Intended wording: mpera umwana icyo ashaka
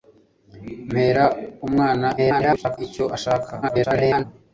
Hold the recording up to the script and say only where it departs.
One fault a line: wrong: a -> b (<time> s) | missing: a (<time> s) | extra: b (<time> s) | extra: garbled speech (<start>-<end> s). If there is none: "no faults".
extra: garbled speech (2.2-2.8 s)
extra: garbled speech (3.6-4.2 s)